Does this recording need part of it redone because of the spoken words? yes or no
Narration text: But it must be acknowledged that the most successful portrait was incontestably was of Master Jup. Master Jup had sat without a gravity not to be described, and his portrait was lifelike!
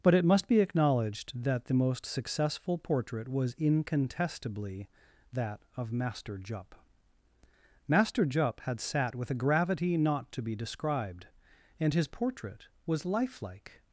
yes